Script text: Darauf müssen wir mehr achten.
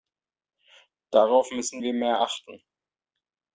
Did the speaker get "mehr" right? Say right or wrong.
right